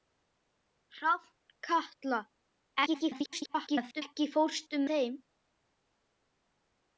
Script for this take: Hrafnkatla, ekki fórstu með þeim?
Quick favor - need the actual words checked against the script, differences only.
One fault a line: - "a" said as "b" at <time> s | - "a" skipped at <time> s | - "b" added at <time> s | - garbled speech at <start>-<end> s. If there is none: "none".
- garbled speech at 2.9-4.0 s
- "með" skipped at 4.9 s